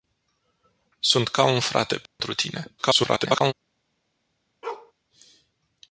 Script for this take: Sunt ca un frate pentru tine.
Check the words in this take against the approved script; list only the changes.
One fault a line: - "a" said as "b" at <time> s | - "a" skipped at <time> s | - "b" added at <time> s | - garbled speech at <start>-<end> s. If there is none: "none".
- garbled speech at 2.8-3.5 s